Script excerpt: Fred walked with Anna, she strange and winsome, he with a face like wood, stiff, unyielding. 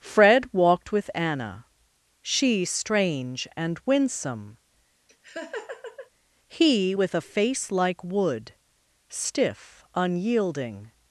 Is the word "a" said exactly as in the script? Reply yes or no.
yes